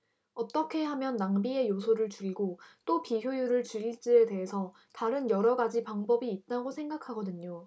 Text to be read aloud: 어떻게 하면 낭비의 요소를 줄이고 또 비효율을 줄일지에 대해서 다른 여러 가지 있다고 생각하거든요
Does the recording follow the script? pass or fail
fail